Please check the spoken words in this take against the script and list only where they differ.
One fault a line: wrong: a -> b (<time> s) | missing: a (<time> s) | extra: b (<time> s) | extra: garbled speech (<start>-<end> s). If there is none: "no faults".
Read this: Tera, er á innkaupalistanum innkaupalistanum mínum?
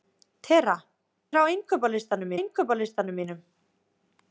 no faults